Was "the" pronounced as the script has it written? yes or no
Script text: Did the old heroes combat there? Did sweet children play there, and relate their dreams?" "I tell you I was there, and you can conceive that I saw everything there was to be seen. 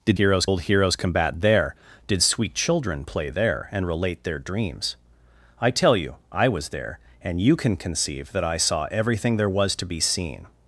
no